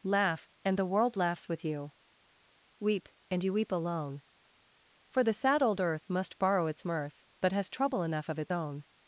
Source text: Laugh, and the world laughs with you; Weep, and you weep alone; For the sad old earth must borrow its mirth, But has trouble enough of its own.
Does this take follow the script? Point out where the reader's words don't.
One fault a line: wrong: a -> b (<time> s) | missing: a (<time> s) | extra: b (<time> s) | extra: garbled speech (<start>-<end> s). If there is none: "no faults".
no faults